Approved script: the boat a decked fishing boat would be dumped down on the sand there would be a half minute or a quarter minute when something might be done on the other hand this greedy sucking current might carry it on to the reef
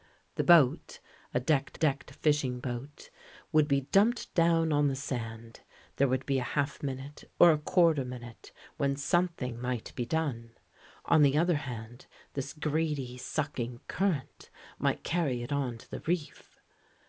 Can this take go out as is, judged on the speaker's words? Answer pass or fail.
fail